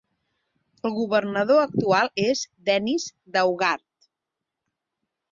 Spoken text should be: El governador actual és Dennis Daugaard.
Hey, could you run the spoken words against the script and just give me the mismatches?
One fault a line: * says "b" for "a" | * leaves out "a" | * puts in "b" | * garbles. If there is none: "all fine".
all fine